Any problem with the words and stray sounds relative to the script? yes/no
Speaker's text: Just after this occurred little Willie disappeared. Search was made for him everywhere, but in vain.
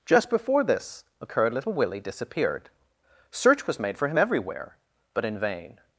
yes